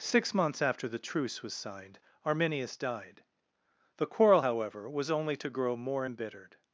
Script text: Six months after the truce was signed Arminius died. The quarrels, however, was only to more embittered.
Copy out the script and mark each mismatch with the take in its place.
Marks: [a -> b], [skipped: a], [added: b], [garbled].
Six months after the truce was signed Arminius died. The [quarrels, -> quarrel] however, was only to [added: grow] more embittered.